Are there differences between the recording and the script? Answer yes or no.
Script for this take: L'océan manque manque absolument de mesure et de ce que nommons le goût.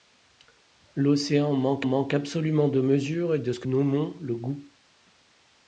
no